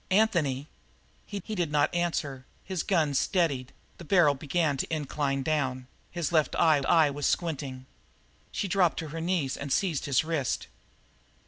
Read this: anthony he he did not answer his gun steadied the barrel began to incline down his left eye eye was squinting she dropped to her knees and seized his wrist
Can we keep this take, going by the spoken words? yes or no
yes